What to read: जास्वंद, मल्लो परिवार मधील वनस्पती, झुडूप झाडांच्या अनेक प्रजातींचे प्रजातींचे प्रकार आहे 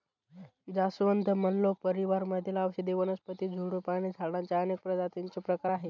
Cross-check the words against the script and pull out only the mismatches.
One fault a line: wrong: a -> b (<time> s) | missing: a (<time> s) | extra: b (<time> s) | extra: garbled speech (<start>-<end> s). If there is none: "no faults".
extra: औषधी (2.6 s)
extra: आणि (3.9 s)
missing: प्रजातींचे (5.4 s)